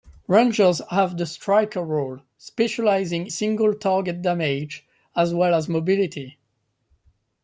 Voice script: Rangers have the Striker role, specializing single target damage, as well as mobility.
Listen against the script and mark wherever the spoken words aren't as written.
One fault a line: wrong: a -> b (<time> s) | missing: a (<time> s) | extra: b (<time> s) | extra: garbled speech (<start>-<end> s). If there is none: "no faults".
no faults